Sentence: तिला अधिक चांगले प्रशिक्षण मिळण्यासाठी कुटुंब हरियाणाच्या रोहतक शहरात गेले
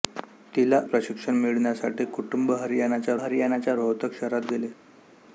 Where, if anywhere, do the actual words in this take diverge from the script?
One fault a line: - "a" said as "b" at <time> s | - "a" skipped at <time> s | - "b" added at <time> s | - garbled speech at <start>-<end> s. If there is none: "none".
- "अधिक चांगले" skipped at 0.8 s
- "हरियाणाच्या" added at 3.2 s